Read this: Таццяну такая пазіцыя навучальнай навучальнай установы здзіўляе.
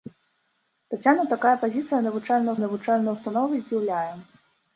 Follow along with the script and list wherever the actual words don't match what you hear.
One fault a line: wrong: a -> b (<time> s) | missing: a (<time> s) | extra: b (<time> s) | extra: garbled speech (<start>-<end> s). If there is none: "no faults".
no faults